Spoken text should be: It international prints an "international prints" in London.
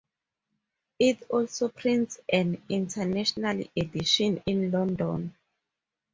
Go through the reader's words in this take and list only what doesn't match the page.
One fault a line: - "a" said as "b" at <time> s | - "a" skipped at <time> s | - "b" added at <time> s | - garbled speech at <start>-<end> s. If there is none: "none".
- "international" said as "also" at 1.3 s
- "prints" said as "edition" at 3.8 s